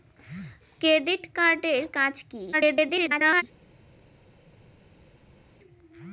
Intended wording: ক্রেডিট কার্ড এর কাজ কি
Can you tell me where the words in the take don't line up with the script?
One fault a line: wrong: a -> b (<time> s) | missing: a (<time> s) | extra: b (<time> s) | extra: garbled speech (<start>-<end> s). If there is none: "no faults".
extra: garbled speech (2.5-3.4 s)